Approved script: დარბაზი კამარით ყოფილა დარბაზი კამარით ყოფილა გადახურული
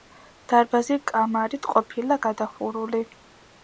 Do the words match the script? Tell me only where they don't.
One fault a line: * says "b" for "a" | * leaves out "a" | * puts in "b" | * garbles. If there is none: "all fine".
* leaves out "დარბაზი კამარით ყოფილა"